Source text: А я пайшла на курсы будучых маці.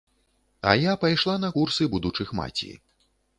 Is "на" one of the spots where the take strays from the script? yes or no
no